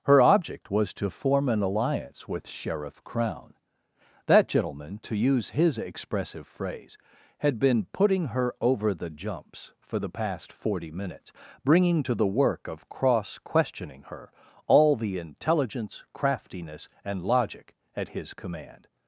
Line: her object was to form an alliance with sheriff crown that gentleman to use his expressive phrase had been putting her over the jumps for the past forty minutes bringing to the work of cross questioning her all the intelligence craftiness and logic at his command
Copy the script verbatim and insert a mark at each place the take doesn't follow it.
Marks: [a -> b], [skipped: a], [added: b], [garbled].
her object was to form an alliance with sheriff crown that gentleman to use his expressive phrase had been putting her over the jumps for the past forty minutes bringing to the work of cross questioning her all the intelligence craftiness and logic at his command